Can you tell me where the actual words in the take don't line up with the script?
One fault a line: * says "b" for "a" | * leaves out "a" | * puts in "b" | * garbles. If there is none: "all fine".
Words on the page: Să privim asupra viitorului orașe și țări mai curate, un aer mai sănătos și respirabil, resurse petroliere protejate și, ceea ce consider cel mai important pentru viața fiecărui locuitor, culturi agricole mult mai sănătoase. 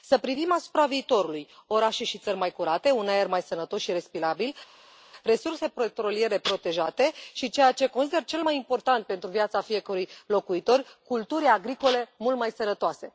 all fine